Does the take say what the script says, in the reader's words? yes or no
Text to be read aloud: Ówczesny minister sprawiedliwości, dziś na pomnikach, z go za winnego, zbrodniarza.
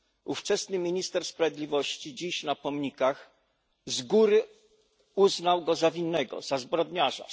no